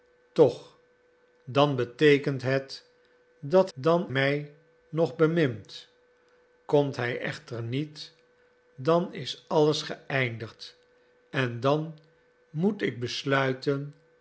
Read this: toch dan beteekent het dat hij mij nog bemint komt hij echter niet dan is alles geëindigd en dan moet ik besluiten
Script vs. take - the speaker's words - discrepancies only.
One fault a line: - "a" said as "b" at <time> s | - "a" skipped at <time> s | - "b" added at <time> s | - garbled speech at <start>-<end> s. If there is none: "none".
- "hij" said as "dan" at 3.7 s